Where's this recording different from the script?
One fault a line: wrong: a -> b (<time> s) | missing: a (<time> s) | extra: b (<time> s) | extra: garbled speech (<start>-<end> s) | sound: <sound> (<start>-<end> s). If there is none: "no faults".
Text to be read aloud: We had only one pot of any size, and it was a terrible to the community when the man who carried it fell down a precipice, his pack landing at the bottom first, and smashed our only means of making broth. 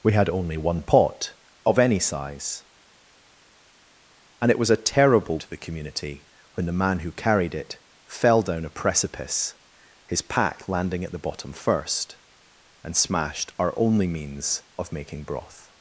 no faults